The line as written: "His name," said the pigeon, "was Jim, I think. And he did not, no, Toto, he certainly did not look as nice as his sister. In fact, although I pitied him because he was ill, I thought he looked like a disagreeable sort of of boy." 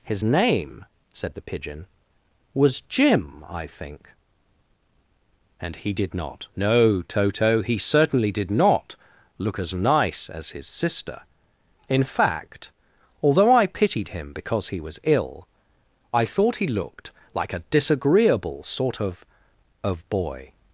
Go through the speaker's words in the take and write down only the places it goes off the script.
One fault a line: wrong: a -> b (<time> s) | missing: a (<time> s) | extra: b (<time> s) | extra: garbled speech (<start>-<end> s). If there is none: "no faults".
no faults